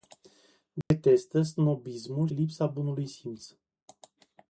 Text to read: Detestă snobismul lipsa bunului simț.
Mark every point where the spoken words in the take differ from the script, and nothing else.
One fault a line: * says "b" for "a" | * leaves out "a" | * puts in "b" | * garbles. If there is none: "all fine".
all fine